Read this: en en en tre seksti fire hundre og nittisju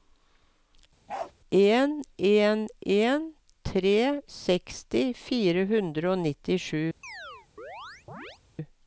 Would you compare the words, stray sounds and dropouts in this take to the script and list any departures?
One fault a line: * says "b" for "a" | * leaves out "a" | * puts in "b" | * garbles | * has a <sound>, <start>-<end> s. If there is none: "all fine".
* has a bark, 1.1-1.3 s
* has a chirp, 7.0-8.4 s